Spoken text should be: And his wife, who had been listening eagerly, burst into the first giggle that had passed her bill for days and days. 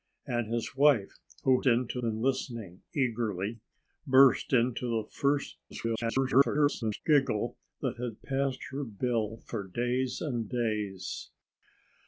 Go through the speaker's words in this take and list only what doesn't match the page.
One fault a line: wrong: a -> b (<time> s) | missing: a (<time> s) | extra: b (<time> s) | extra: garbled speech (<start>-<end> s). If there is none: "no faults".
wrong: had -> into (1.7 s)
extra: garbled speech (5.7-7.0 s)